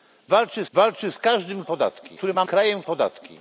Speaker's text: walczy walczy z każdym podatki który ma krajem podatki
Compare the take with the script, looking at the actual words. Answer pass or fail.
pass